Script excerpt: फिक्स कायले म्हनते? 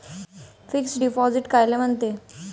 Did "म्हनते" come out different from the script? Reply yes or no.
no